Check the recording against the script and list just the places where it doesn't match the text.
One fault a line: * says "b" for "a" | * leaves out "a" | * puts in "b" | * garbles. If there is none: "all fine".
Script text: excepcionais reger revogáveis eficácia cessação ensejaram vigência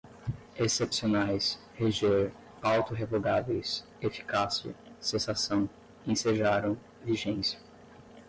* puts in "auto"